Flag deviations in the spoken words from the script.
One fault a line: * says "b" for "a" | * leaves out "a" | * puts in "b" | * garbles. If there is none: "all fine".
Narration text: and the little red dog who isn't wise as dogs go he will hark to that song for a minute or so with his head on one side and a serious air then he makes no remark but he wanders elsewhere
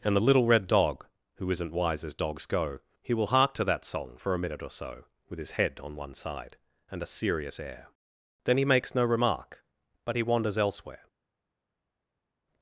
all fine